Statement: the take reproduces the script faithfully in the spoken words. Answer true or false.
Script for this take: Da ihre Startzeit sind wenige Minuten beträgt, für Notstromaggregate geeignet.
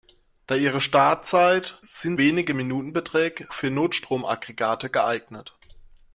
true